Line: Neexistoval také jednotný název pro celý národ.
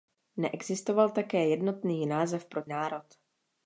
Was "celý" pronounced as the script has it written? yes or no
no